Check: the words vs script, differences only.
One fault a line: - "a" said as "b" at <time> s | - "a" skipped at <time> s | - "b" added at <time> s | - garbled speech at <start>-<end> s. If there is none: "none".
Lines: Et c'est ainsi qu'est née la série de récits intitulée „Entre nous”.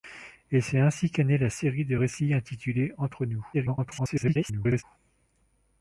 - garbled speech at 3.5-4.8 s